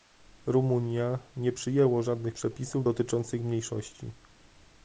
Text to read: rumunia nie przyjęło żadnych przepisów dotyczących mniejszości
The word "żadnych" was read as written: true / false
true